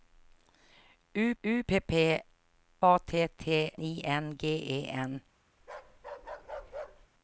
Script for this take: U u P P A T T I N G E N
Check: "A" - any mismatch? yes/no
no